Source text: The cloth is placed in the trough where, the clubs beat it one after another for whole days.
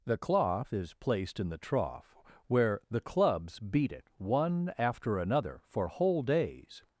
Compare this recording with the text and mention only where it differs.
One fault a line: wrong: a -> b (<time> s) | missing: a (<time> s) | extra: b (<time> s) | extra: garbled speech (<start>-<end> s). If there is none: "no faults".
no faults